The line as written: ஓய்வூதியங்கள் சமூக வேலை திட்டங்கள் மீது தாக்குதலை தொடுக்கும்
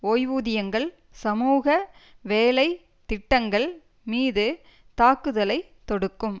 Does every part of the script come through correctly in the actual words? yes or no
yes